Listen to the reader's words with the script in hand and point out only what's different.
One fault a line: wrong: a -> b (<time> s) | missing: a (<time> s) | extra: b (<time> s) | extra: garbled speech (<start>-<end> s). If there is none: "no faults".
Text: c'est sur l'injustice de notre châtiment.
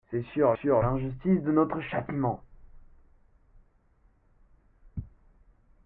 extra: sur (0.6 s)